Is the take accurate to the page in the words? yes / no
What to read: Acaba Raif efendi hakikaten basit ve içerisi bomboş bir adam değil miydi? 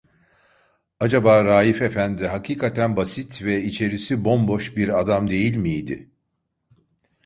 yes